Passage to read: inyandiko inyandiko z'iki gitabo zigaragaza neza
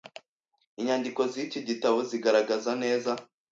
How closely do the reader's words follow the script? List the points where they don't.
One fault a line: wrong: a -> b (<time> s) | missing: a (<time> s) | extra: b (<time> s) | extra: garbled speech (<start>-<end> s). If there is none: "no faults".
missing: inyandiko (1.2 s)